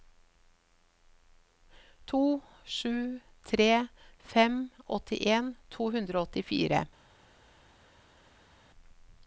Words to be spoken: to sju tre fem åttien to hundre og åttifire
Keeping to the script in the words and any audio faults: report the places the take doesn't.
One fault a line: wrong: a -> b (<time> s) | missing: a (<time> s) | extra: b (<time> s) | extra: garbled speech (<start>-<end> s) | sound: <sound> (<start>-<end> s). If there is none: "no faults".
no faults